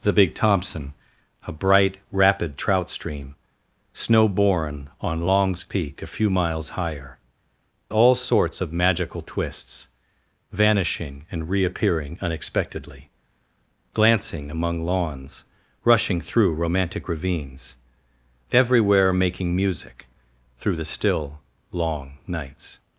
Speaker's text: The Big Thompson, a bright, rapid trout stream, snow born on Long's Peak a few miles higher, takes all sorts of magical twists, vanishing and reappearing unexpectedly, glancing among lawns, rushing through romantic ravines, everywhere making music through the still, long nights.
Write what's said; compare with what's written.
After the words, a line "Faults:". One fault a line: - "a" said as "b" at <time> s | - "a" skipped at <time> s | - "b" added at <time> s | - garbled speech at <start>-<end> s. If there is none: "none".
The Big Thompson, a bright, rapid trout stream, snow born on Long's Peak a few miles higher, all sorts of magical twists, vanishing and reappearing unexpectedly, glancing among lawns, rushing through romantic ravines, everywhere making music through the still, long nights.
Faults:
- "takes" skipped at 7.2 s